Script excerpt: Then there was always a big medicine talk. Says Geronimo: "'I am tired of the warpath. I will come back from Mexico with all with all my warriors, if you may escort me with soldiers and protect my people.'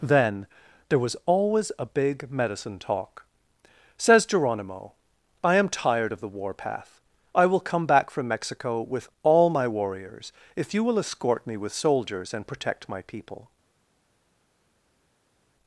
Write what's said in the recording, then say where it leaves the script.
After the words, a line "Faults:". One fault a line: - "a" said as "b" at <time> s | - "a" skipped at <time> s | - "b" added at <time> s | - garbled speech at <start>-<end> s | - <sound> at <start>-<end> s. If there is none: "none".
Then there was always a big medicine talk. Says Geronimo: "'I am tired of the warpath. I will come back from Mexico with all my warriors, if you will escort me with soldiers and protect my people.'
Faults:
- "with all" skipped at 9.5 s
- "may" said as "will" at 10.8 s